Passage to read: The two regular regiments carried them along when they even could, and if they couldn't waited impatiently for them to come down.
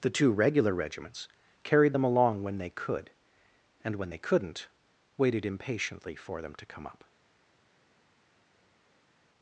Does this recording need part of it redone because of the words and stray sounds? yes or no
yes